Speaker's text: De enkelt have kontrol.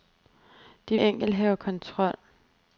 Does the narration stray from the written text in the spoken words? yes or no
no